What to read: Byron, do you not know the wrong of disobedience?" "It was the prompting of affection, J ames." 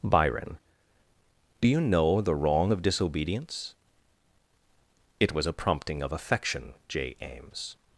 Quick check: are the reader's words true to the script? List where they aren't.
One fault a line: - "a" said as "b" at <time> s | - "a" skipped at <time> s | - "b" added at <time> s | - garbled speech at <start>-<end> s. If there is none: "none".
- "not" skipped at 1.8 s
- "the" said as "a" at 5.5 s